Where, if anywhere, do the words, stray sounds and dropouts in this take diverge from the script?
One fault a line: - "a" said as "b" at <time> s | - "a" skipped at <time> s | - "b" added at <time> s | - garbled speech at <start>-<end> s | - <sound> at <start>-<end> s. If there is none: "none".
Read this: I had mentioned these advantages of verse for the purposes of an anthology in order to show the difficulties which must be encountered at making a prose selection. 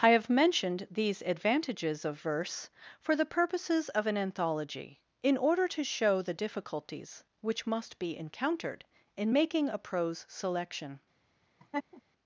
- "had" said as "have" at 0.1 s
- "at" said as "in" at 9.2 s
- laugh at 11.6-12.0 s